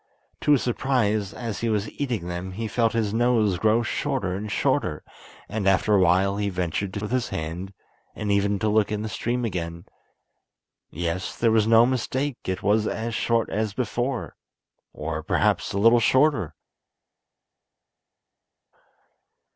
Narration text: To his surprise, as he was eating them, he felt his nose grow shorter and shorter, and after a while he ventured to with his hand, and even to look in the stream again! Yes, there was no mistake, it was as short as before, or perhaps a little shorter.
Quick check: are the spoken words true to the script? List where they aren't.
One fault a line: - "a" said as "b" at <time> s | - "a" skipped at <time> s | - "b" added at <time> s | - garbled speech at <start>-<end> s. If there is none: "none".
none